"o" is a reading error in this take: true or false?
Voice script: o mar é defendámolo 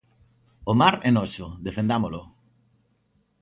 false